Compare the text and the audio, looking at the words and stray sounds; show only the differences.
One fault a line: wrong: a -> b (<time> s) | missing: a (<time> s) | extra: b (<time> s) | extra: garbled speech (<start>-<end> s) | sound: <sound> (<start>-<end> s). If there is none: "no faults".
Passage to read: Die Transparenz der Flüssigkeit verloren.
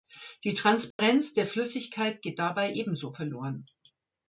sound: dropout (0.9-1.0 s)
extra: geht dabei ebenso (2.2 s)